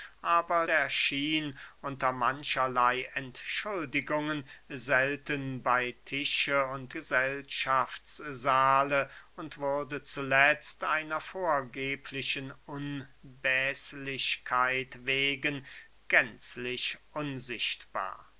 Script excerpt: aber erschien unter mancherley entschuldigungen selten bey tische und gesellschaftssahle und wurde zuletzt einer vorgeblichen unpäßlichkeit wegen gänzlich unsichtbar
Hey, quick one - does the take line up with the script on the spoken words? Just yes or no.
yes